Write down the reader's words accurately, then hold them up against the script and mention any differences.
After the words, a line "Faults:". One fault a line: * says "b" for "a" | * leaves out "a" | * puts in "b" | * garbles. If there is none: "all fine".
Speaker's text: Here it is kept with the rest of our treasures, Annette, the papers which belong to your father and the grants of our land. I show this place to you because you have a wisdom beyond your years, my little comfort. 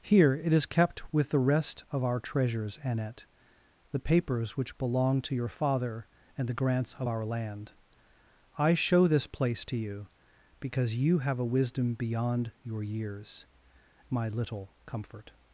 Here it is kept with the rest of our treasures, Annette, the papers which belong to your father and the grants of our land. I show this place to you because you have a wisdom beyond your years, my little comfort.
Faults:
all fine